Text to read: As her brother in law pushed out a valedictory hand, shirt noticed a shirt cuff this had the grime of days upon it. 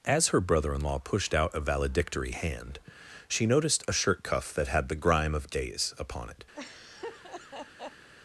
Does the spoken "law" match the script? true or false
true